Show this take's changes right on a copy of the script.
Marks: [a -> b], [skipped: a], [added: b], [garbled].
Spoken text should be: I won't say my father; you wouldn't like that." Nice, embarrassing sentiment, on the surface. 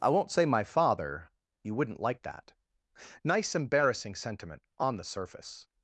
I won't say my father; you wouldn't like that." Nice, embarrassing sentiment, on the surface.